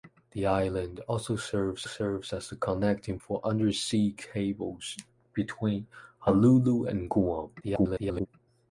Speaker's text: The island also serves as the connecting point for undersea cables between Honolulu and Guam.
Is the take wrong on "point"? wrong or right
wrong